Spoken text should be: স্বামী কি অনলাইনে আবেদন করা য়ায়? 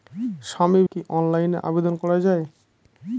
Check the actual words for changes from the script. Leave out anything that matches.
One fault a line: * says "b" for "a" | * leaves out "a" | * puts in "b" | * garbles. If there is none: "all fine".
all fine